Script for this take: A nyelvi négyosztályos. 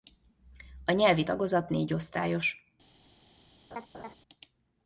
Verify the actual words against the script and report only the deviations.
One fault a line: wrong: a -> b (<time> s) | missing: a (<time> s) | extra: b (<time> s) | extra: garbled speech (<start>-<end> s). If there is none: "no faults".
extra: tagozat (1.2 s)